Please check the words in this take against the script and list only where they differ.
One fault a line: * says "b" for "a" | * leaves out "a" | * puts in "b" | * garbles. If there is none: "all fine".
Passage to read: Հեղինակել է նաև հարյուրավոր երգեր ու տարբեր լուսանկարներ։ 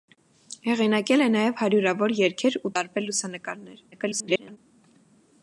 * garbles